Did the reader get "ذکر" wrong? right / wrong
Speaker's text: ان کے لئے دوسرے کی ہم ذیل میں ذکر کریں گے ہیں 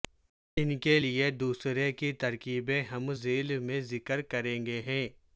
right